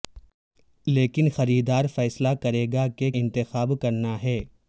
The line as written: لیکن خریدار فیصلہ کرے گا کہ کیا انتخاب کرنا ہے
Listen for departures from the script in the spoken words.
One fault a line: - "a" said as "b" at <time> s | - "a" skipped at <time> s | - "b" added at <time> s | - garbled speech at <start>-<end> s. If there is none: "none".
- "کیا" skipped at 3.1 s